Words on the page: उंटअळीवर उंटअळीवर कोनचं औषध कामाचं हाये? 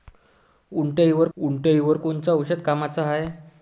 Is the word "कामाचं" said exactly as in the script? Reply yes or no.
yes